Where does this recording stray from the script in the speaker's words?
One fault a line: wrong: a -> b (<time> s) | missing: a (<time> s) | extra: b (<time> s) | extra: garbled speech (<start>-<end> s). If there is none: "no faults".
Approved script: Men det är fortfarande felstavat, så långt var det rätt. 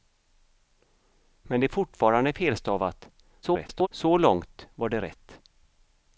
extra: garbled speech (3.4-3.9 s)